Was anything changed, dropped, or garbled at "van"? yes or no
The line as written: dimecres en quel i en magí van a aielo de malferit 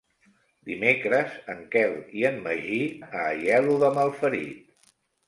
yes